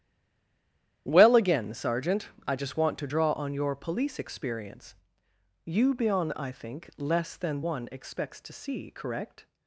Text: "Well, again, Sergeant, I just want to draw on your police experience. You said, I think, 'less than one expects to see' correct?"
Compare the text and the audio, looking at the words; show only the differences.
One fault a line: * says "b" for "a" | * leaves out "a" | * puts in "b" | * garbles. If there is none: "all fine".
* says "bion" for "said"